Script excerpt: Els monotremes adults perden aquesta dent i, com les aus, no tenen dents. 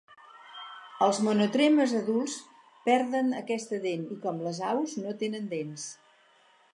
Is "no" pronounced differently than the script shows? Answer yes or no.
no